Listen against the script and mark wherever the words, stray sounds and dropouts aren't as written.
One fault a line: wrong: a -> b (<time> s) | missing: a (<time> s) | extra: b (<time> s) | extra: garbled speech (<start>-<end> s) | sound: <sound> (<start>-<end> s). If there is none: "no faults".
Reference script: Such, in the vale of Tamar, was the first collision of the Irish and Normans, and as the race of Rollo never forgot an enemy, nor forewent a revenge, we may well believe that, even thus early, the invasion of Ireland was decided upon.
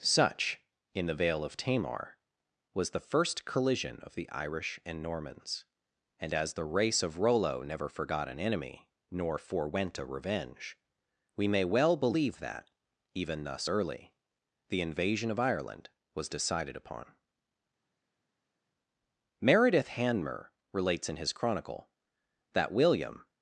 extra: Meredith Hanmer relates in his Chronicle that William (19.4 s)